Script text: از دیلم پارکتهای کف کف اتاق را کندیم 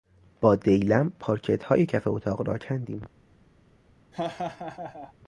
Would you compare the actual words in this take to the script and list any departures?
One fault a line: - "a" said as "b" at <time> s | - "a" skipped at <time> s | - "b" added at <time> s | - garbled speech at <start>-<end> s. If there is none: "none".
- "از" said as "با" at 0.4 s
- "کف" skipped at 2.1 s